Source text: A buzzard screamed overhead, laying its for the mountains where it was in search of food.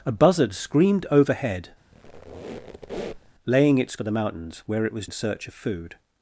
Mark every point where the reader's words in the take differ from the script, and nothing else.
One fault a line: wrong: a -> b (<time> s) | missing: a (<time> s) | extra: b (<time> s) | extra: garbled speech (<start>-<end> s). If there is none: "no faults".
no faults